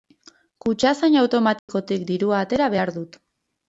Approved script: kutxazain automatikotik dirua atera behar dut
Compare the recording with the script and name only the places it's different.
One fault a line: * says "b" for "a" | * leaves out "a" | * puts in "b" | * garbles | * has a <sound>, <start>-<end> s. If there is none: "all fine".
* has a dropout, 1.6-1.7 s